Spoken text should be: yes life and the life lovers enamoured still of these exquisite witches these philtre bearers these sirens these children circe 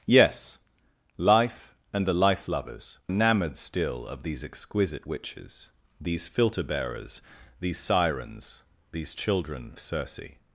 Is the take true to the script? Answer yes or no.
yes